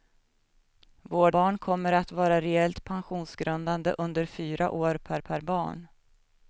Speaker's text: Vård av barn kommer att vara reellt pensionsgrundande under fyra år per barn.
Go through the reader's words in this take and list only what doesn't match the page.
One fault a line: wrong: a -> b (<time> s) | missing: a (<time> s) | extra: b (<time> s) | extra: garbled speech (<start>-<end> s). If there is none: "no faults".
missing: av (1.4 s)
extra: per (5.2 s)